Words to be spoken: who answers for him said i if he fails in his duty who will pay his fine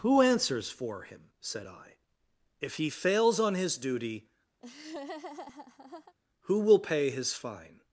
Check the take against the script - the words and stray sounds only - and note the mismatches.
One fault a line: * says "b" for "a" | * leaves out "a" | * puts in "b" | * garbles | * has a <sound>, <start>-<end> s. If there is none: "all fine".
* says "on" for "in"
* has a laugh, 4.6-6.1 s